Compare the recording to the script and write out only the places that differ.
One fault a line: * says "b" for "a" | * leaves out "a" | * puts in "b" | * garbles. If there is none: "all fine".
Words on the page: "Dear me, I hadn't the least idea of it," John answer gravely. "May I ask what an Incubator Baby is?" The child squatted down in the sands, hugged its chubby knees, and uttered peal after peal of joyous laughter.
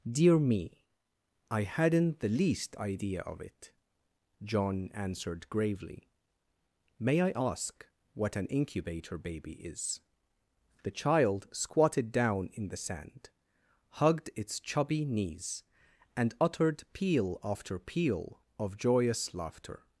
* says "answered" for "answer"
* says "sand" for "sands"